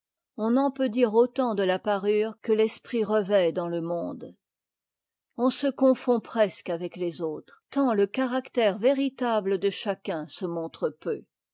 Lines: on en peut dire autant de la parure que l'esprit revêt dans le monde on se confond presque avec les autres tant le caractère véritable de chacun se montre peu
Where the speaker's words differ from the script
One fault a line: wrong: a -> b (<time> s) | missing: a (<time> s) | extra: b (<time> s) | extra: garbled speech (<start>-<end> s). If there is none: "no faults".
no faults